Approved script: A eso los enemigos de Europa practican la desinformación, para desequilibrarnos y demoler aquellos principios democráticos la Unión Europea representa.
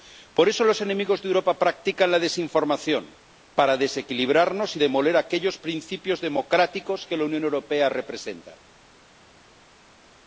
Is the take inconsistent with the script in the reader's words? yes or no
yes